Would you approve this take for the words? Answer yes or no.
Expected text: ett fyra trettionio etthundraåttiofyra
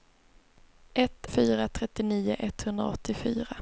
yes